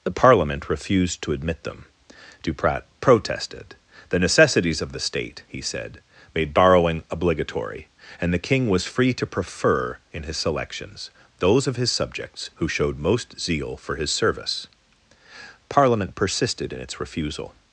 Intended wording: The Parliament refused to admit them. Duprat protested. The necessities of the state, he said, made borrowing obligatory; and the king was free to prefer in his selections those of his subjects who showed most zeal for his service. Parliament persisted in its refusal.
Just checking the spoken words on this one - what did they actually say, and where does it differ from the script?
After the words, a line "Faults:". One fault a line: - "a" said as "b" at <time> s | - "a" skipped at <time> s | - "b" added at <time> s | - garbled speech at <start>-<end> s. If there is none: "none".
The Parliament refused to admit them. Duprat protested. The necessities of the state, he said, made borrowing obligatory; and the king was free to prefer in his selections those of his subjects who showed most zeal for his service. Parliament persisted in its refusal.
Faults:
none